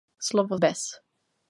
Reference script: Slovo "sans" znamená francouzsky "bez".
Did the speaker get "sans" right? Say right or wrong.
wrong